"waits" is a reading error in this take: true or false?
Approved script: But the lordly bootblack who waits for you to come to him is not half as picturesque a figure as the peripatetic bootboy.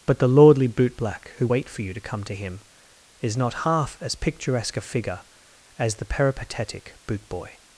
true